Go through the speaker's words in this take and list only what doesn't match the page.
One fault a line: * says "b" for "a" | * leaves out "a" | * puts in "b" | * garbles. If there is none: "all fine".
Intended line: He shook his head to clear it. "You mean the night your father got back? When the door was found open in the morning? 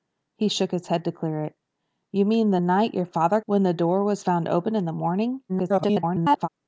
* leaves out "got back"
* garbles